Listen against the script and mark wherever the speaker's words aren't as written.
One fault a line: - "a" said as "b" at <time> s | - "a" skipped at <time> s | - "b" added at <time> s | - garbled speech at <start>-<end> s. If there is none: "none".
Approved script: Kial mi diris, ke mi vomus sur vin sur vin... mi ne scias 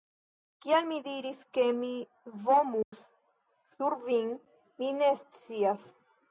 - "sur vin" skipped at 4.3 s